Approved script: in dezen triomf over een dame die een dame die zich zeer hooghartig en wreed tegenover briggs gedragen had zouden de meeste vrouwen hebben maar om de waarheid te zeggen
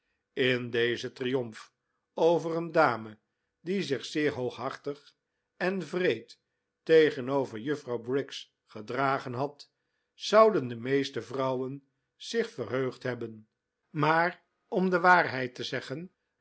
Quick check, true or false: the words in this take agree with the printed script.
false